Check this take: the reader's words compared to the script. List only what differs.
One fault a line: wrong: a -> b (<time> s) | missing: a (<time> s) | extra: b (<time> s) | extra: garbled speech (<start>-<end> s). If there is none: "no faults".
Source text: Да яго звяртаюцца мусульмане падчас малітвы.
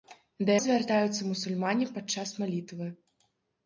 missing: яго (0.5 s)